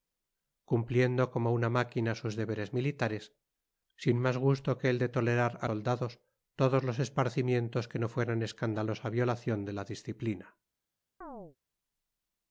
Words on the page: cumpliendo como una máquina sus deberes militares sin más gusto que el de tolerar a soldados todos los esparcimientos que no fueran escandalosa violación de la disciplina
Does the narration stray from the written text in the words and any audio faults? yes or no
yes